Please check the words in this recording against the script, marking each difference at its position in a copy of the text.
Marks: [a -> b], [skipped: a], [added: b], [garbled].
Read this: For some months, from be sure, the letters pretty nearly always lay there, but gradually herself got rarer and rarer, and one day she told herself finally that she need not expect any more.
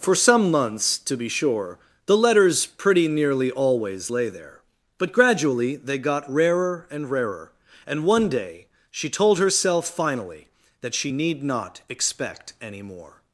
For some months, [from -> to] be sure, the letters pretty nearly always lay there, but gradually [herself -> they] got rarer and rarer, and one day she told herself finally that she need not expect any more.